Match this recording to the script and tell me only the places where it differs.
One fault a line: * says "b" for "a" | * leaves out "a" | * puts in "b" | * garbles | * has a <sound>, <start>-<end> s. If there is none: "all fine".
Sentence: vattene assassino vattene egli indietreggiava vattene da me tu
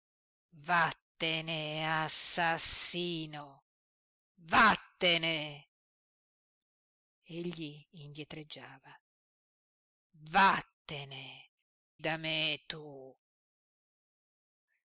all fine